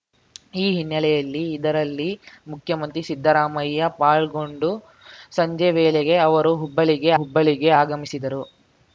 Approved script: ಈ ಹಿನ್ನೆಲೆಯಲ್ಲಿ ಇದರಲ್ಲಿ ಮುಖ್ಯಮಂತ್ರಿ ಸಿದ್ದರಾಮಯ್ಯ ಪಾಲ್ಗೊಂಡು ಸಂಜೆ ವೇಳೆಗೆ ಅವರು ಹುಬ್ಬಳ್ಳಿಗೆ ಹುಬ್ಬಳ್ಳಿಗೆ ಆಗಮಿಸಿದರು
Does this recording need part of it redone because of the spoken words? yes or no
no